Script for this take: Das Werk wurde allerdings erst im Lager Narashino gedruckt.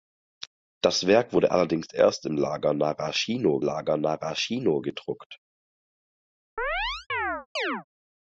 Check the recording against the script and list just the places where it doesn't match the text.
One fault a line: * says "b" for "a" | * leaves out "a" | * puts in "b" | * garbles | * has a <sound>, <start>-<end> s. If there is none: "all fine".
* puts in "Lager Narashino"
* has a chirp, 6.6-7.8 s